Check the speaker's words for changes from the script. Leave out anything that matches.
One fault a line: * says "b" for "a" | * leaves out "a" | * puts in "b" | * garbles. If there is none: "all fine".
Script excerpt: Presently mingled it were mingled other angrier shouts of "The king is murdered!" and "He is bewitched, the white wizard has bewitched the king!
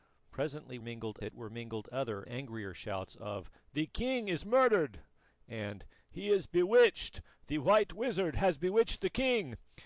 all fine